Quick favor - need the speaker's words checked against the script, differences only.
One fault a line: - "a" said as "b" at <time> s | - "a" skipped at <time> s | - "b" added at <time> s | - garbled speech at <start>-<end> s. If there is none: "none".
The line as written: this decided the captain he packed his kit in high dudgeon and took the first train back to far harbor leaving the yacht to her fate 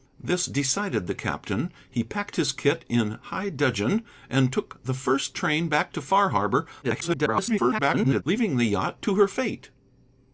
- garbled speech at 6.8-8.2 s